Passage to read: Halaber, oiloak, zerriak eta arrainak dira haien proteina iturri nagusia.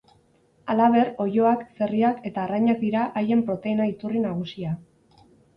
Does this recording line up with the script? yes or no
yes